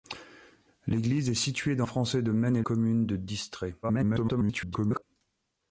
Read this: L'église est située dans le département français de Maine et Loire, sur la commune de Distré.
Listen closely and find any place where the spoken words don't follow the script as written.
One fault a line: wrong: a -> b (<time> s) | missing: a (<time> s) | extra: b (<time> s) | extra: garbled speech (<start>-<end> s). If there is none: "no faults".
missing: le département (1.9 s)
missing: Loire sur la (2.6 s)
extra: garbled speech (3.8-5.0 s)